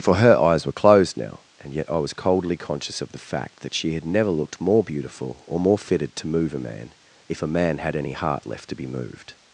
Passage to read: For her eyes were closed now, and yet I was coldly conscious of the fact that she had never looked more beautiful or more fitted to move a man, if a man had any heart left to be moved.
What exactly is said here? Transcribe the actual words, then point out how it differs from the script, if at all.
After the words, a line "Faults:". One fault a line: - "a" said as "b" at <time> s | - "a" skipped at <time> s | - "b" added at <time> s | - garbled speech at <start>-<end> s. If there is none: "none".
For her eyes were closed now, and yet I was coldly conscious of the fact that she had never looked more beautiful or more fitted to move a man, if a man had any heart left to be moved.
Faults:
none